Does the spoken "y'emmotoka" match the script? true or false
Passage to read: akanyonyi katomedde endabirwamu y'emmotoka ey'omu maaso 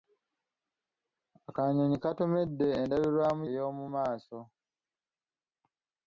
false